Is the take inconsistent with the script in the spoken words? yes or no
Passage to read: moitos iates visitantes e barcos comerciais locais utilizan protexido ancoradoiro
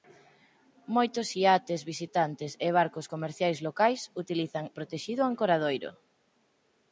no